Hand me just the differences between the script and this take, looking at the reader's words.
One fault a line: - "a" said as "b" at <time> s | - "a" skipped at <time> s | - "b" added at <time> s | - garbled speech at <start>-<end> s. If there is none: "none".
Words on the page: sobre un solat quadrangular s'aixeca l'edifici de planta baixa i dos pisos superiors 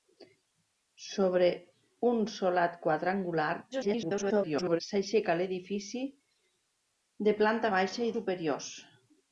- garbled speech at 3.7-4.8 s
- "dos pisos" skipped at 8.2 s